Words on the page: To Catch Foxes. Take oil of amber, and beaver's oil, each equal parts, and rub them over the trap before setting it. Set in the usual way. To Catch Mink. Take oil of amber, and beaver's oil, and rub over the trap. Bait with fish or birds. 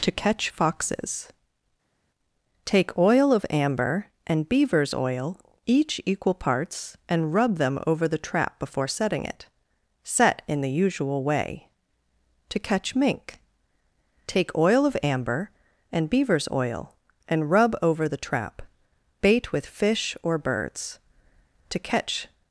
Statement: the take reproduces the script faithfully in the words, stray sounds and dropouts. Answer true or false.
false